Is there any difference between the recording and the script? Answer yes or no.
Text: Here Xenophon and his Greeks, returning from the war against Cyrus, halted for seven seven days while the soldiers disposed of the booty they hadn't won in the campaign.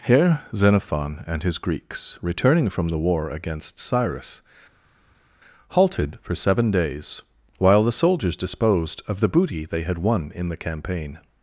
yes